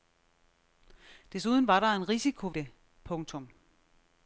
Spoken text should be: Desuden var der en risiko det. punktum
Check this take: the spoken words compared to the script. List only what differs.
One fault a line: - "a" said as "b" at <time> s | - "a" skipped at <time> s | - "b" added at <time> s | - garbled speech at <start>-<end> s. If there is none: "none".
none